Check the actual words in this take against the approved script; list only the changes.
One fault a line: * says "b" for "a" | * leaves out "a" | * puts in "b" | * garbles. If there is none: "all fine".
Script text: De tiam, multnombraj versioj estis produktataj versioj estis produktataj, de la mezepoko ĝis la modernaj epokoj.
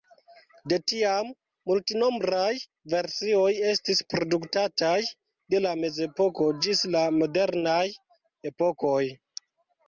* leaves out "versioj estis produktataj"